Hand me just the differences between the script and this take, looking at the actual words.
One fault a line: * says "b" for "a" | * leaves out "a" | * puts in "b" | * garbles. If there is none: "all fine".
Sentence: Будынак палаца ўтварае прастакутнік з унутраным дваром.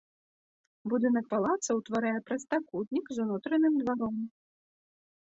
all fine